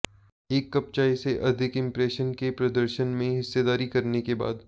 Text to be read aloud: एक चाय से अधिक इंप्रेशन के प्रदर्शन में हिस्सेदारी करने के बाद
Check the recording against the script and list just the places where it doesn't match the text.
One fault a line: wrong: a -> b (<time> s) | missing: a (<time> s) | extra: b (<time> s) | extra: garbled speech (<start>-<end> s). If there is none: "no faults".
extra: कप (0.7 s)